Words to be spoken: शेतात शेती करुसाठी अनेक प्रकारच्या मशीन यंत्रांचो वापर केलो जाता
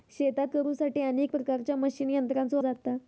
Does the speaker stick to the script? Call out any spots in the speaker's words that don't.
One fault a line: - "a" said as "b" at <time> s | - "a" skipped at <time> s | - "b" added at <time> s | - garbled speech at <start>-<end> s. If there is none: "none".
- "शेती" skipped at 0.6 s
- "वापर केलो" skipped at 2.6 s